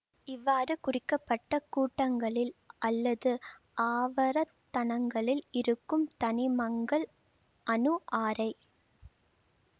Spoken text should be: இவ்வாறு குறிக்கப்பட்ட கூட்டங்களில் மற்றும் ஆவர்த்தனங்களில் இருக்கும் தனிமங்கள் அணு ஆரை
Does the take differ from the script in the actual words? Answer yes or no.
yes